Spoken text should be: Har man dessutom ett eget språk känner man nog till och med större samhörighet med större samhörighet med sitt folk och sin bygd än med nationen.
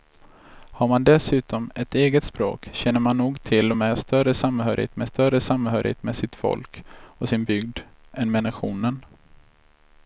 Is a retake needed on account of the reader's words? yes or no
no